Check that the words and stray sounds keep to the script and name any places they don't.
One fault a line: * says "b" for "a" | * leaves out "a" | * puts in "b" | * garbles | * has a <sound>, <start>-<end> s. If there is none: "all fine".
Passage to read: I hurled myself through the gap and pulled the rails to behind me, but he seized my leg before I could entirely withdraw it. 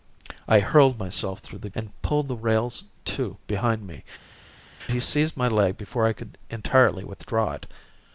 * leaves out "gap"
* leaves out "but"